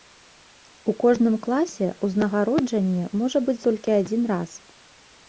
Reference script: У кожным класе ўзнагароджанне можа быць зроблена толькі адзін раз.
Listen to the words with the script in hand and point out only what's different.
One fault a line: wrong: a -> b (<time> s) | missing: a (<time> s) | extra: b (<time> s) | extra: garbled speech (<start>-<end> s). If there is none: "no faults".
missing: зроблена (3.6 s)